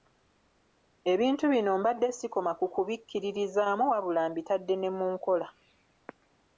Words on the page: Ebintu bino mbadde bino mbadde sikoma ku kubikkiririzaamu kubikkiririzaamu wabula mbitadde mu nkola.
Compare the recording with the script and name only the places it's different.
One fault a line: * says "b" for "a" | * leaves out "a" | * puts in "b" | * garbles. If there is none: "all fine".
* leaves out "bino mbadde"
* leaves out "kubikkiririzaamu"
* puts in "ne"